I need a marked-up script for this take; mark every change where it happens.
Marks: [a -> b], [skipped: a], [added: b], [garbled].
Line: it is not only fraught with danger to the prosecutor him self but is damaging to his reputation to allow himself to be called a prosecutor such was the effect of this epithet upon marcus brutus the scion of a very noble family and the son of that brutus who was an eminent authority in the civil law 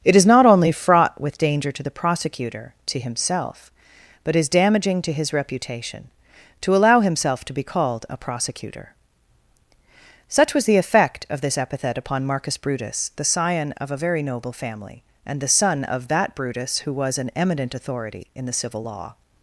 it is not only fraught with danger to the prosecutor [him self -> to himself] but is damaging to his reputation to allow himself to be called a prosecutor such was the effect of this epithet upon marcus brutus the scion of a very noble family and the son of that brutus who was an eminent authority in the civil law